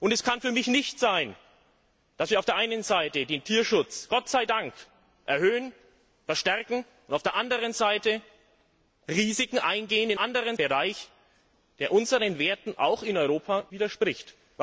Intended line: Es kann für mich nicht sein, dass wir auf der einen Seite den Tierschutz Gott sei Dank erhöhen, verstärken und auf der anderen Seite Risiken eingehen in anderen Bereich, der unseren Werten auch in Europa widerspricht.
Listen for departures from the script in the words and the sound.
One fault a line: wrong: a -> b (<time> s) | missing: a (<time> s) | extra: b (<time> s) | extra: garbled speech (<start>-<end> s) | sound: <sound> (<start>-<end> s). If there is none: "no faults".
no faults